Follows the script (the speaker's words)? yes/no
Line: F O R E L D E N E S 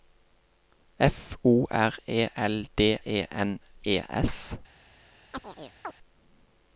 yes